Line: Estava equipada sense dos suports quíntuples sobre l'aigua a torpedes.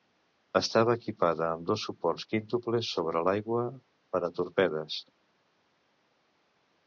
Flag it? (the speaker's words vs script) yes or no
yes